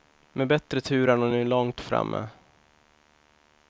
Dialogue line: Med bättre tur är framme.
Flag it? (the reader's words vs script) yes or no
yes